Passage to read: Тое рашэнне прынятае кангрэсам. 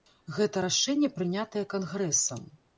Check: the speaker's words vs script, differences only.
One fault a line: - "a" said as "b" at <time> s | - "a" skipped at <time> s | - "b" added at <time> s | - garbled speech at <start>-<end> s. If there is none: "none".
- "Тое" said as "Гэта" at 0.4 s